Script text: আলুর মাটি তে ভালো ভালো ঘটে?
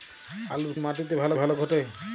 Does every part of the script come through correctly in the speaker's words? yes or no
yes